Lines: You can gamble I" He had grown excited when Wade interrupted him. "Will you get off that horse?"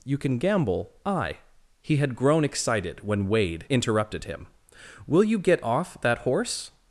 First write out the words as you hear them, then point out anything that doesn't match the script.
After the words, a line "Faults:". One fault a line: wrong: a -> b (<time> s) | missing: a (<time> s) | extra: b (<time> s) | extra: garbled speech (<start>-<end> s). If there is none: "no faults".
You can gamble I" He had grown excited when Wade interrupted him. "Will you get off that horse?"
Faults:
no faults